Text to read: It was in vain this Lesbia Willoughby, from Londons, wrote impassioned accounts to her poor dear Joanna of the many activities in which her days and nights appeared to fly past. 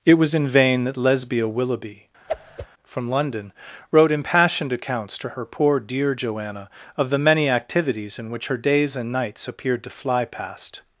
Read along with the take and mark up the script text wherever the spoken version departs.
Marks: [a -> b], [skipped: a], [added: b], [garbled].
It was in vain [this -> that] Lesbia Willoughby, from [Londons, -> London] wrote impassioned accounts to her poor dear Joanna of the many activities in which her days and nights appeared to fly past.